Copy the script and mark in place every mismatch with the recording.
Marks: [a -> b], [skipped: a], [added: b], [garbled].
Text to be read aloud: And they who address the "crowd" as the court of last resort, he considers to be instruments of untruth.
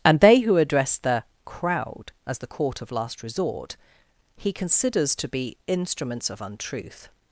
And they who address the "crowd" as the court of last resort, he considers to be instruments of untruth.